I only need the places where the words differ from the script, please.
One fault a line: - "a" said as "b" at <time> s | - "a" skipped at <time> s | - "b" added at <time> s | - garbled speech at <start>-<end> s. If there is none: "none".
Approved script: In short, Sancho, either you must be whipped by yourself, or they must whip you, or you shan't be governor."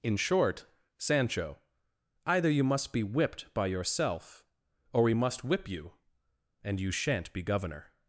- "they" said as "we" at 5.0 s
- "or" said as "and" at 6.6 s